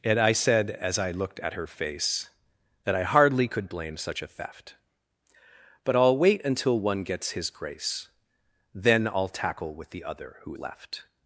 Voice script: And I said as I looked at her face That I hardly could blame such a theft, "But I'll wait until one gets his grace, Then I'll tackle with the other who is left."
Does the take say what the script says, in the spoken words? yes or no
no